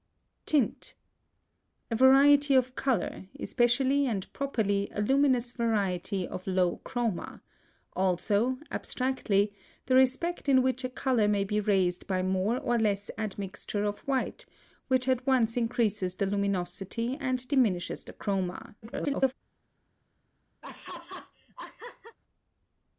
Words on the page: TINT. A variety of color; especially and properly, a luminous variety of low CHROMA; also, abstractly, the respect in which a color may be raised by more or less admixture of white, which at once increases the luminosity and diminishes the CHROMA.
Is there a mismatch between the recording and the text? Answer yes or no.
yes